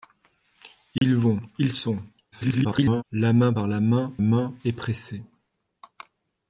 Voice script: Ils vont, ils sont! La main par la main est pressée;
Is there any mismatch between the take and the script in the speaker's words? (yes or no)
yes